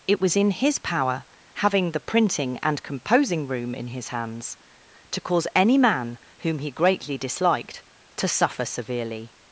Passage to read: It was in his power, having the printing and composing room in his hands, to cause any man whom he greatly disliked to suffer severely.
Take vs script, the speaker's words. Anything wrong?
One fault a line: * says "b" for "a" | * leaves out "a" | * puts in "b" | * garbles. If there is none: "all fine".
all fine